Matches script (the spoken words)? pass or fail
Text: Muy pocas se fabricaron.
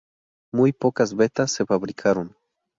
fail